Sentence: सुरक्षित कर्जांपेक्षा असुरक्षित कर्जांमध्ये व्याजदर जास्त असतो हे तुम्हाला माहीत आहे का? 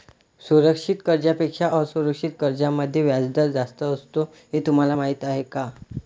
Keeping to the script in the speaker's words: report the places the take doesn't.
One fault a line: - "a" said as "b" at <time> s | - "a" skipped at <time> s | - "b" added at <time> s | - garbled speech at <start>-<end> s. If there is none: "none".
none